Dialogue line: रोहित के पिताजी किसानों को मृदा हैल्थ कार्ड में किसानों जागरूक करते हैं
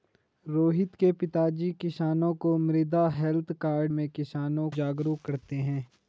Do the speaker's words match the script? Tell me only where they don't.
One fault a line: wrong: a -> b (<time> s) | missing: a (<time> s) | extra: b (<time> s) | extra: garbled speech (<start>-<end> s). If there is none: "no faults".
no faults